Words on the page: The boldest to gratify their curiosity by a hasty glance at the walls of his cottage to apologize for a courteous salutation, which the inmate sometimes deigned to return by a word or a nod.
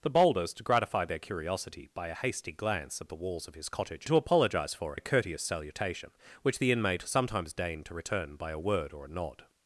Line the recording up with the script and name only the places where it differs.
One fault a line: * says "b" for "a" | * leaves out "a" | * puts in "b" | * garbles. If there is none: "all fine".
all fine